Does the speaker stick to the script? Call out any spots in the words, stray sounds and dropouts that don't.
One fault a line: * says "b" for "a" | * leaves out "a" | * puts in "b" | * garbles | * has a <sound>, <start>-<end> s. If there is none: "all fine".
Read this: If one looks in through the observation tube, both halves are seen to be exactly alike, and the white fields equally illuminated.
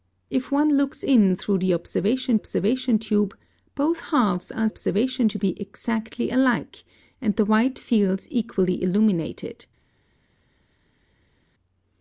* puts in "observation"
* says "observation" for "seen"